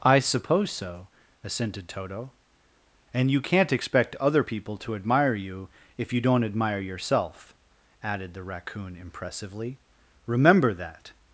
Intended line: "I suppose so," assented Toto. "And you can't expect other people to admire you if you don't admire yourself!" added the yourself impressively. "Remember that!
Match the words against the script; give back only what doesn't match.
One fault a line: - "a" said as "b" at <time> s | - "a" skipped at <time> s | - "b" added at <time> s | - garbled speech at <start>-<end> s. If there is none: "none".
- "yourself" said as "raccoon" at 8.4 s